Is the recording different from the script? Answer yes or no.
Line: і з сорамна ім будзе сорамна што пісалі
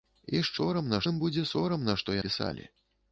no